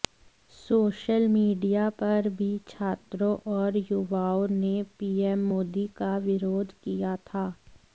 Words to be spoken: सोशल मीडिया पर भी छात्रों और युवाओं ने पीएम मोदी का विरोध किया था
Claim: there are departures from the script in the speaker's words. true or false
false